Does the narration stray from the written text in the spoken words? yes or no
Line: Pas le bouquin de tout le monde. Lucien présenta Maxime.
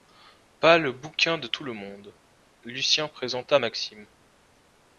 no